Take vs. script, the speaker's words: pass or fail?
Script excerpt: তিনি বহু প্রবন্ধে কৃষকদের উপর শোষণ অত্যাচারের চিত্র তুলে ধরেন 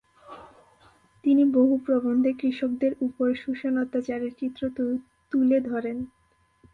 pass